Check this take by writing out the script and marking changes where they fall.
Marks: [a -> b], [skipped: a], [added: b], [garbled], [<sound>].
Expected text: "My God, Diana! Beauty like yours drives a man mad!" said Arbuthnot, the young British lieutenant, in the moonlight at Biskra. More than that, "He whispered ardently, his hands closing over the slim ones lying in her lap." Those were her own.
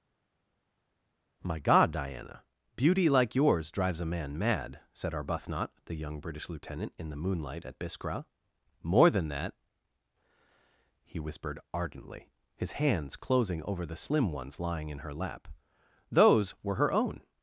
"My God, Diana! Beauty like yours drives a man mad!" said Arbuthnot, the young British lieutenant, in the moonlight at Biskra. More than that, "He whispered ardently, his hands closing over the slim ones lying in her lap." Those were her own.